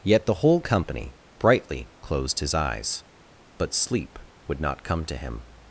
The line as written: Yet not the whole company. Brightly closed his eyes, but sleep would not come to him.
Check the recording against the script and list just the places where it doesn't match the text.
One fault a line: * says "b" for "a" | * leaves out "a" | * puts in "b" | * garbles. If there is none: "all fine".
* leaves out "not"